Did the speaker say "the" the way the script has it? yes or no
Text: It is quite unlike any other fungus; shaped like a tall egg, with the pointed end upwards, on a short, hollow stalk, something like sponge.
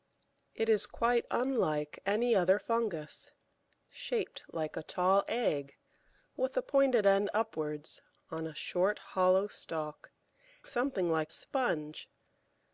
yes